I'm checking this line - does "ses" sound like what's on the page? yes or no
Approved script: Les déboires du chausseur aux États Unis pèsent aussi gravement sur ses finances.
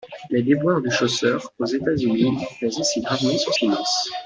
no